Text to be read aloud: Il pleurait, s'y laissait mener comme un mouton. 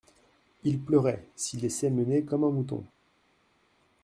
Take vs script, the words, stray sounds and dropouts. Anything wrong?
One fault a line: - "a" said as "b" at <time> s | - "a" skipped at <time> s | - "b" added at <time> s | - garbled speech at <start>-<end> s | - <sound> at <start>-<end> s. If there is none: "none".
none